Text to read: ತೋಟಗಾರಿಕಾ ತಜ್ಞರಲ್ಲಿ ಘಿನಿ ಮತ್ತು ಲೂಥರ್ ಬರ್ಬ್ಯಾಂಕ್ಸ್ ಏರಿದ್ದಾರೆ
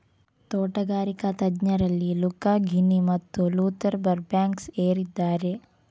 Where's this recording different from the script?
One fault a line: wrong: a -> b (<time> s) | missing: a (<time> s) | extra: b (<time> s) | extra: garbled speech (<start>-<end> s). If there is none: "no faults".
extra: ಲುಕಾ (2.1 s)